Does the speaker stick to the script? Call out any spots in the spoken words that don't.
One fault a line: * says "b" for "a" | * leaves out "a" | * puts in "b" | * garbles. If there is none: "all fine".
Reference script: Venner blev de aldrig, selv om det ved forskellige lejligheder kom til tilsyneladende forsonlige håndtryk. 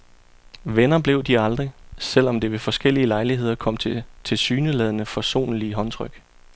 all fine